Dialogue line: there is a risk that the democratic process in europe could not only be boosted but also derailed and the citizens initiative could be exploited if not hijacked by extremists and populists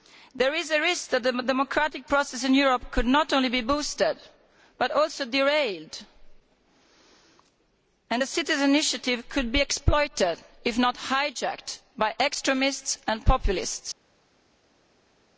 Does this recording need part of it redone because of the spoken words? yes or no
no